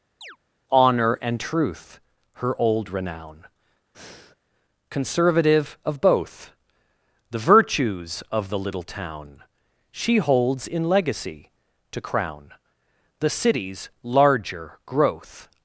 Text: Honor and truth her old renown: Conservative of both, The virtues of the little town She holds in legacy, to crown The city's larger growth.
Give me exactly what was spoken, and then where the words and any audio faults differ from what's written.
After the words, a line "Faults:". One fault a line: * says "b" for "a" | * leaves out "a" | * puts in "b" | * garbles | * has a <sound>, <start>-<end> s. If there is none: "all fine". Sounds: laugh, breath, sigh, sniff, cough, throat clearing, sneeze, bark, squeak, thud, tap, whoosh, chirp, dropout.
Honor and truth her old renown: Conservative of both, The virtues of the little town She holds in legacy, to crown The city's larger growth.
Faults:
* has a chirp, 0.2-0.4 s
* has a breath, 3.9-4.4 s